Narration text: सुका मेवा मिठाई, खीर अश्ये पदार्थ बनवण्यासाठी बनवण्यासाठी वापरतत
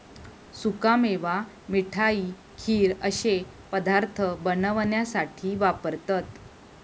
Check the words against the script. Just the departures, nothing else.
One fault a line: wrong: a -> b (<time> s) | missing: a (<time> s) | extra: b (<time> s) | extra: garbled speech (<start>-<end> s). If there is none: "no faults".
missing: बनवण्यासाठी (5.5 s)